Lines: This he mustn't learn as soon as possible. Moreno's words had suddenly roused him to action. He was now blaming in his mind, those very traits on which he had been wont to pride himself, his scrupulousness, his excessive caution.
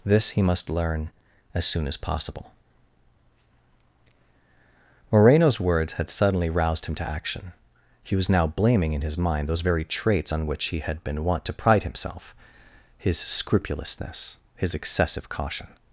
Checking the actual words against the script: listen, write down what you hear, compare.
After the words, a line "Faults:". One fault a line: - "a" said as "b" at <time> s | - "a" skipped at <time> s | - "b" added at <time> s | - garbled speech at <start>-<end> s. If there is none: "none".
This he must learn as soon as possible. Moreno's words had suddenly roused him to action. He was now blaming in his mind, those very traits on which he had been wont to pride himself, his scrupulousness, his excessive caution.
Faults:
- "mustn't" said as "must" at 0.4 s